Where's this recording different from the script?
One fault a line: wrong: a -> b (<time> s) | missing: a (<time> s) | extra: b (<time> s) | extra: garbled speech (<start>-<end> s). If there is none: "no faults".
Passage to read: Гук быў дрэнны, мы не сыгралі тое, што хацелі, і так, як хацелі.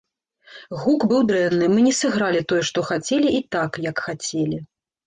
no faults